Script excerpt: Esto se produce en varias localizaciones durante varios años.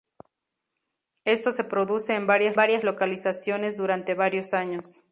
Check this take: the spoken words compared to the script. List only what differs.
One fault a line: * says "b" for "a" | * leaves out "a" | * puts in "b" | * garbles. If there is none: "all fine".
* puts in "varias"